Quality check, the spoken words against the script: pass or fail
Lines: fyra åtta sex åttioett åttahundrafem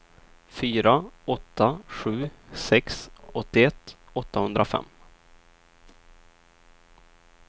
fail